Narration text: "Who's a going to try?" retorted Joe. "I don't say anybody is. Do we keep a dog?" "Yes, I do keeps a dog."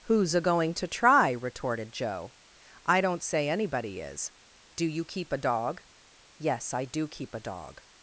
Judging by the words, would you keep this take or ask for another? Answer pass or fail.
fail